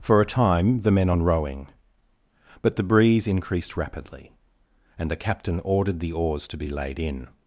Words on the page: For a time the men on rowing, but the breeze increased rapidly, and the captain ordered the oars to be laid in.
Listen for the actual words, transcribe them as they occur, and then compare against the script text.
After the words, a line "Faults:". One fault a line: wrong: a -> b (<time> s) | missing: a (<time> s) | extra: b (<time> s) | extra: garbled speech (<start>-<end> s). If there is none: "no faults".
For a time the men on rowing, but the breeze increased rapidly, and the captain ordered the oars to be laid in.
Faults:
no faults